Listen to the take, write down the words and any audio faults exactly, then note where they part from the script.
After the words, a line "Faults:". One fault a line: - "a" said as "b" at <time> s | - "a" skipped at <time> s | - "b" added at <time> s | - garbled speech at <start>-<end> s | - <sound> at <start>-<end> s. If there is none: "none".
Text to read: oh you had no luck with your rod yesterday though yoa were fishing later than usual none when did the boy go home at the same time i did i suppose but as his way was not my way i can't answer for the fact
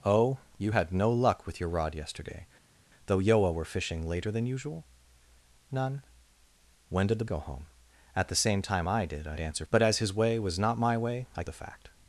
oh you had no luck with your rod yesterday though yoa were fishing later than usual none when did the go home at the same time i did i answer but as his way was not my way i the fact
Faults:
- "boy" skipped at 7.2 s
- "suppose" said as "answer" at 9.4 s
- "can't answer for" skipped at 11.4 s